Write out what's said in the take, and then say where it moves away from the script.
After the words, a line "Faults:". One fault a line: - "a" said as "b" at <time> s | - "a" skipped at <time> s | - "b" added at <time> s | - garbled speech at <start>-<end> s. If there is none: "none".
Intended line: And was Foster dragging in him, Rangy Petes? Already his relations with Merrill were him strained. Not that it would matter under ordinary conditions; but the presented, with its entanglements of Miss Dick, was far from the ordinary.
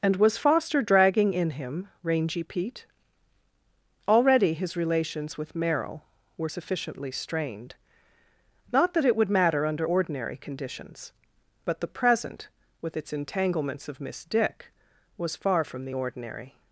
And was Foster dragging in him, Rangy Pete? Already his relations with Merrill were sufficiently strained. Not that it would matter under ordinary conditions; but the present, with its entanglements of Miss Dick, was far from the ordinary.
Faults:
- "Petes" said as "Pete" at 2.4 s
- "him" said as "sufficiently" at 6.5 s
- "presented" said as "present" at 11.9 s